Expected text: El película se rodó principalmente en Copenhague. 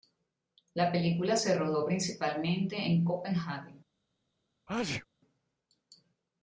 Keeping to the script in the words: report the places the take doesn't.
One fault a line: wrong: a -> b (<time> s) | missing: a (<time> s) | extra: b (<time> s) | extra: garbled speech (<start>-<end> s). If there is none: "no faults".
wrong: El -> La (0.7 s)